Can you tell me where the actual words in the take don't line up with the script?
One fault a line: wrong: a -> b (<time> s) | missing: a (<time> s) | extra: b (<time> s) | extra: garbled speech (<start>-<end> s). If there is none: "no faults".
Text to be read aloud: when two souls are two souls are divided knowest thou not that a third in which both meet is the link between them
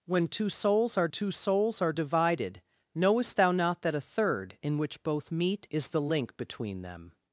no faults